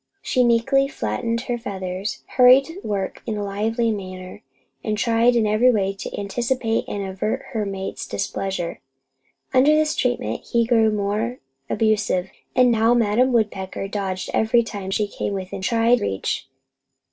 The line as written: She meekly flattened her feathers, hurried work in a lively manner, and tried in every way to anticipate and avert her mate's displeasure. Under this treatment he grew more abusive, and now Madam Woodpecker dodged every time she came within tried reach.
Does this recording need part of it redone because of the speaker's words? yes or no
no